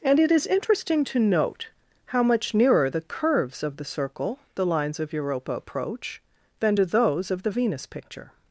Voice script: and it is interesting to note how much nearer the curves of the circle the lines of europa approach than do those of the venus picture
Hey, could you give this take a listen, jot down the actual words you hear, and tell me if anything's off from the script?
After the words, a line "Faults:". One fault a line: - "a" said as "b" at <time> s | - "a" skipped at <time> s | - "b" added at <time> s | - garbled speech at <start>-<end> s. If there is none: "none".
and it is interesting to note how much nearer the curves of the circle the lines of europa approach than do those of the venus picture
Faults:
none